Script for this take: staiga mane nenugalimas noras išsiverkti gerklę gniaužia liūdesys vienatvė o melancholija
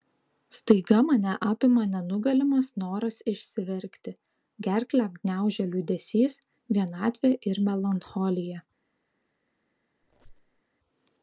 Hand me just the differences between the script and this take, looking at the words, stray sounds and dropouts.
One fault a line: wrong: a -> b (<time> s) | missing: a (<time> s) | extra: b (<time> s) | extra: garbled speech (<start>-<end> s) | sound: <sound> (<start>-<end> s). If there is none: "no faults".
extra: apima (1.5 s)
wrong: o -> ir (7.5 s)
sound: squeak (10.0-10.6 s)